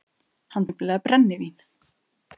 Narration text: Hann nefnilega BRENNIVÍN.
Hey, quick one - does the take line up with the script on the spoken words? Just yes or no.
yes